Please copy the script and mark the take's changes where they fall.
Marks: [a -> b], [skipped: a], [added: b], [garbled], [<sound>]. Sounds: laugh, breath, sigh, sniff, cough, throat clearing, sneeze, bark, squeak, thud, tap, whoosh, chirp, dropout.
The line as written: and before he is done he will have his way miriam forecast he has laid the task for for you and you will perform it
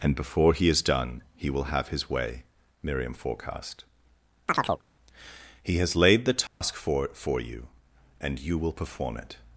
and before he is done he will have his way miriam forecast [chirp] he has laid the task [dropout] for for you and you will perform it